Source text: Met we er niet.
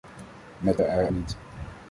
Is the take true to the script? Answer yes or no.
yes